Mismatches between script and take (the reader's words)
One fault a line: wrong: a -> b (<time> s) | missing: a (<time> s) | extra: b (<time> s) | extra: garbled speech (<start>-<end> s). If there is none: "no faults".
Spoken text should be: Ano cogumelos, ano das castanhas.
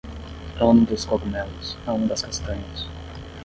extra: dos (0.8 s)